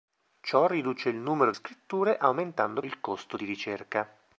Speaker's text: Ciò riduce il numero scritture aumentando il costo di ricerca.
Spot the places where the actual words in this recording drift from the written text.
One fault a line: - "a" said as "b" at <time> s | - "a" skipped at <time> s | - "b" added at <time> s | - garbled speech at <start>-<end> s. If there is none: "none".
none